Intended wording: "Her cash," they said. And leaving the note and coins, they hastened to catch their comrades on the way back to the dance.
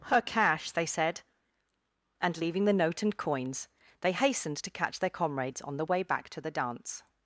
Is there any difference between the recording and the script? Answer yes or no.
no